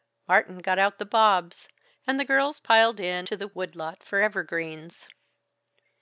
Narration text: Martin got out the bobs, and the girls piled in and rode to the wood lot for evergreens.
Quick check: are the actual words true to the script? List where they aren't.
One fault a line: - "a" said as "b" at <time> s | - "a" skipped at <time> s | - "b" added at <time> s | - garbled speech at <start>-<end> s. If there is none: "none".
- "and rode" skipped at 3.3 s